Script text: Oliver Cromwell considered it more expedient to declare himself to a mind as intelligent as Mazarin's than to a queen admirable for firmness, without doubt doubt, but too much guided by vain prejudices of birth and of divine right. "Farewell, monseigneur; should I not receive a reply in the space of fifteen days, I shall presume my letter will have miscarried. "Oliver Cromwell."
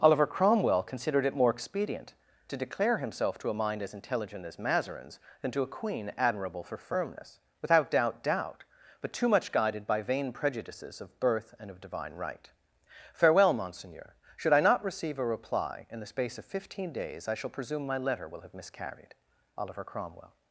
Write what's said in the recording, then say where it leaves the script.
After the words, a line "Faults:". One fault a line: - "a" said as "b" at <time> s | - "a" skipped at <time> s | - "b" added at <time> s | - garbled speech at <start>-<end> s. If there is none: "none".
Oliver Cromwell considered it more expedient to declare himself to a mind as intelligent as Mazarin's than to a queen admirable for firmness, without doubt doubt, but too much guided by vain prejudices of birth and of divine right. "Farewell, monseigneur; should I not receive a reply in the space of fifteen days, I shall presume my letter will have miscarried. "Oliver Cromwell."
Faults:
none